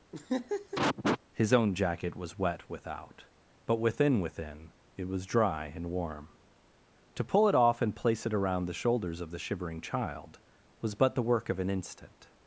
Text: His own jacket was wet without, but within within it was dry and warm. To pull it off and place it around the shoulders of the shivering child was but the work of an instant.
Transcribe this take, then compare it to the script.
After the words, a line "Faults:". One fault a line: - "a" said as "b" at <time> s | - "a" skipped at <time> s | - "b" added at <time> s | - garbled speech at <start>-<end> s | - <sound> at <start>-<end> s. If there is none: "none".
His own jacket was wet without, but within within it was dry and warm. To pull it off and place it around the shoulders of the shivering child was but the work of an instant.
Faults:
- laugh at 0.1-1.2 s